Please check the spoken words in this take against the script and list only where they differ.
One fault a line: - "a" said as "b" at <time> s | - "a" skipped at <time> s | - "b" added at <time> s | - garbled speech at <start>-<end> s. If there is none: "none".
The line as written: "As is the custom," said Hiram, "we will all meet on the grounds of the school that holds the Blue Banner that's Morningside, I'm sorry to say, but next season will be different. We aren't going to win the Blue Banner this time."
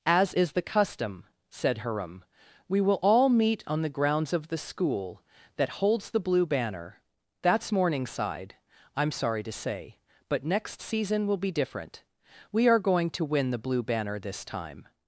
- "aren't" said as "are" at 12.7 s